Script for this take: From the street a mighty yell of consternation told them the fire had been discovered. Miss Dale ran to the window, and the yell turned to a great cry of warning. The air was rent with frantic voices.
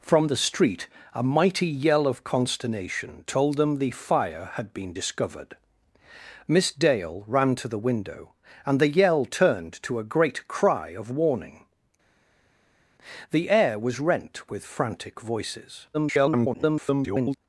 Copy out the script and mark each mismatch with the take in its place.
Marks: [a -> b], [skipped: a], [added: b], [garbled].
From the street a mighty yell of consternation told them the fire had been discovered. Miss Dale ran to the window, and the yell turned to a great cry of warning. The air was rent with frantic voices. [garbled]